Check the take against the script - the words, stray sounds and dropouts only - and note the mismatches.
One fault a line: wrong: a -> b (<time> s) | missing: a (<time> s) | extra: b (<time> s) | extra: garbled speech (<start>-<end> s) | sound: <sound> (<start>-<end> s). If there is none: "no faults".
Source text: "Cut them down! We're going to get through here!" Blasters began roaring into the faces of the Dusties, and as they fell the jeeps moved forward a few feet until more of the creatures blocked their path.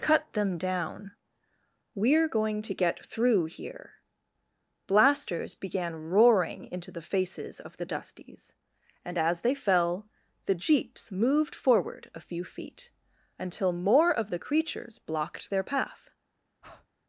sound: breath (16.6-16.9 s)